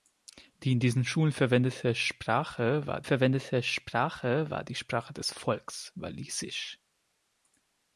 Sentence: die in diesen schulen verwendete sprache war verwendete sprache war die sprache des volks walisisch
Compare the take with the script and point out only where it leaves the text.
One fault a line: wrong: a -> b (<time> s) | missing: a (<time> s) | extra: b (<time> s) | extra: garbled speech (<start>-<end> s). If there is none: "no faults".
no faults